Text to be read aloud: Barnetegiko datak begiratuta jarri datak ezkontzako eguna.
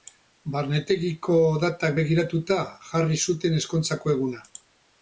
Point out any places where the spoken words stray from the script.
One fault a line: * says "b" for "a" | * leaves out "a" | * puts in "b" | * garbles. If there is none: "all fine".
* says "zuten" for "datak"